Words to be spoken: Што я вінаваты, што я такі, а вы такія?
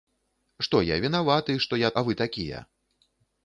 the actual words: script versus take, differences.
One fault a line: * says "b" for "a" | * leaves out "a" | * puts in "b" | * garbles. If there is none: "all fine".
* leaves out "такі"